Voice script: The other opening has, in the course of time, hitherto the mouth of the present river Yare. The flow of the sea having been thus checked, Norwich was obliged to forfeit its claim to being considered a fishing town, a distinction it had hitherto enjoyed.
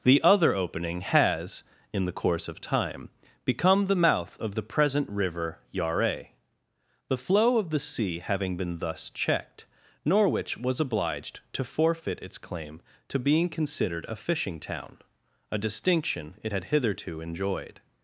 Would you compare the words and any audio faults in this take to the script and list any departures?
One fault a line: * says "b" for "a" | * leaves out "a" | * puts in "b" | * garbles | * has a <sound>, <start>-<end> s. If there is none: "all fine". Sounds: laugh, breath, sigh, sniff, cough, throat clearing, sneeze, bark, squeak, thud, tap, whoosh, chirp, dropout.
* says "become" for "hitherto"